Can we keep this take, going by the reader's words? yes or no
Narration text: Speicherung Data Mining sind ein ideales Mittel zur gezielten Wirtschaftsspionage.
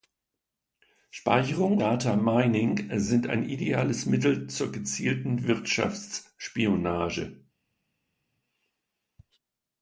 yes